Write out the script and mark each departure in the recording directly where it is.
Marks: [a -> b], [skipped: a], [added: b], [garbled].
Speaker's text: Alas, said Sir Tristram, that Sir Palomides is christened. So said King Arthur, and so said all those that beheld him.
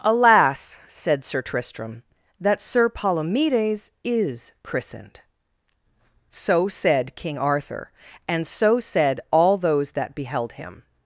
Alas, said Sir Tristram, that Sir Palomides is christened. So said King Arthur, and so said all those that beheld him.